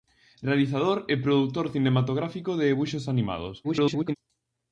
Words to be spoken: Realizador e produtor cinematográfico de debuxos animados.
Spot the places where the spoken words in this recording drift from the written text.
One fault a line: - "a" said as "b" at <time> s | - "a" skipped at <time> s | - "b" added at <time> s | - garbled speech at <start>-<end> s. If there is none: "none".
- garbled speech at 3.6-4.2 s